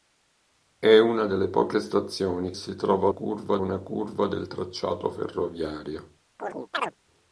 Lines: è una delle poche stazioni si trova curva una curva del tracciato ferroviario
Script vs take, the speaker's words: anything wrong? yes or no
no